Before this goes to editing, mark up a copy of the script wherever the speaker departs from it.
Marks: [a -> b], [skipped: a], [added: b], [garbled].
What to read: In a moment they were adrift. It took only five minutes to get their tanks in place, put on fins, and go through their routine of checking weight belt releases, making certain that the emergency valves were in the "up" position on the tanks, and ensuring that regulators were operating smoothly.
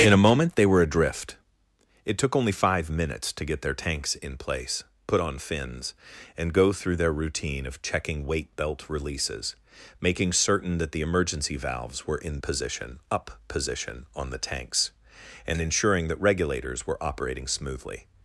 In a moment they were adrift. It took only five minutes to get their tanks in place, put on fins, and go through their routine of checking weight belt releases, making certain that the emergency valves were in [the -> position] "up" position on the tanks, and ensuring that regulators were operating smoothly.